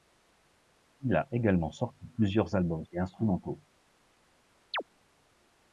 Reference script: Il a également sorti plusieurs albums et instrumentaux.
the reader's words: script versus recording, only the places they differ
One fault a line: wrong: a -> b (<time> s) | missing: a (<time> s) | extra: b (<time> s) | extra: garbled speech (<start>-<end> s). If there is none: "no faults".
no faults